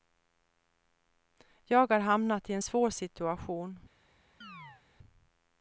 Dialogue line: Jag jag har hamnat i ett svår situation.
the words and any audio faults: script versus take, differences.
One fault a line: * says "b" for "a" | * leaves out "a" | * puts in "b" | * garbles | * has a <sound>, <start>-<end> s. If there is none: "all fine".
* leaves out "jag"
* says "en" for "ett"
* has a chirp, 4.4-4.8 s